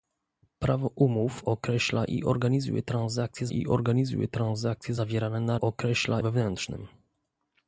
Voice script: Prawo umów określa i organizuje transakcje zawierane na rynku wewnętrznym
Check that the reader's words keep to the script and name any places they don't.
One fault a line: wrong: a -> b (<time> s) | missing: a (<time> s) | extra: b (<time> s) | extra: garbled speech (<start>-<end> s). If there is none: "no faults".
extra: i organizuje transakcje (3.5 s)
wrong: rynku -> określa (5.6 s)